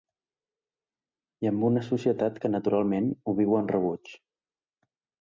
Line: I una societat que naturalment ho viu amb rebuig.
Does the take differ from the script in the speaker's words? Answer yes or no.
yes